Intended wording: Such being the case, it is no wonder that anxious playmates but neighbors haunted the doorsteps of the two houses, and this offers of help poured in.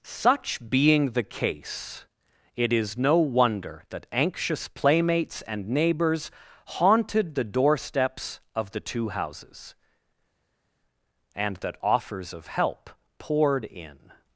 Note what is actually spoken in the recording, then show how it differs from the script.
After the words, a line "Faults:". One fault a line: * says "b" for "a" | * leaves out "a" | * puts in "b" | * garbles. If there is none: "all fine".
Such being the case, it is no wonder that anxious playmates and neighbors haunted the doorsteps of the two houses, and that offers of help poured in.
Faults:
* says "and" for "but"
* says "that" for "this"